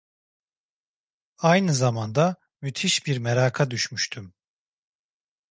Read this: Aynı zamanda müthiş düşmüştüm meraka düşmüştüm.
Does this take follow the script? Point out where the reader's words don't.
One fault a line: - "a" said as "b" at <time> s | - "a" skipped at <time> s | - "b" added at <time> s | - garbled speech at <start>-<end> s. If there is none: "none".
- "düşmüştüm" said as "bir" at 3.0 s